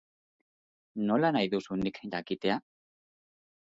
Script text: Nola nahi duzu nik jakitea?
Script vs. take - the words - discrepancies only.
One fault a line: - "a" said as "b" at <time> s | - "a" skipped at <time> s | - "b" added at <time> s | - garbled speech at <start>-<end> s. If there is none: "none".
none